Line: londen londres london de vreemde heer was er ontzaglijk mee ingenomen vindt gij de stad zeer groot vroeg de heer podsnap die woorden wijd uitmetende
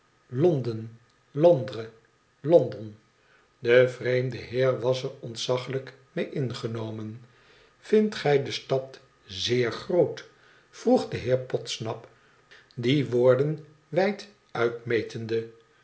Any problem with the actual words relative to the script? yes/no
no